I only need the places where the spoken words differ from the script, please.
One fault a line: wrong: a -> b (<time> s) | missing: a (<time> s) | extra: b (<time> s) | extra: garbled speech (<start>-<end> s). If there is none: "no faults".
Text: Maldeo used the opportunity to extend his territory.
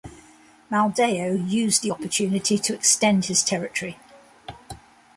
no faults